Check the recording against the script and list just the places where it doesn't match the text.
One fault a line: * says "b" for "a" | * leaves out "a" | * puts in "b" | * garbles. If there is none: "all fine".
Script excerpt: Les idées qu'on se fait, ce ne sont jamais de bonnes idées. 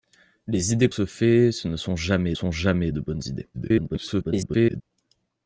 * leaves out "qu'on"
* puts in "sont jamais"
* garbles